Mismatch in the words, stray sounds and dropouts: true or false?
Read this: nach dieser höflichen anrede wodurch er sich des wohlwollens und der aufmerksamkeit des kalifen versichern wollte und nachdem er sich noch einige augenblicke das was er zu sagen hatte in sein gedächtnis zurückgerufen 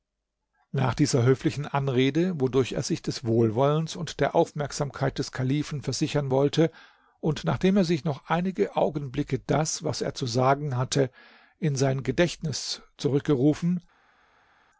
false